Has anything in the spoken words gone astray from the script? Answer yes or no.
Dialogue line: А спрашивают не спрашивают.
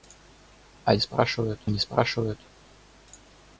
no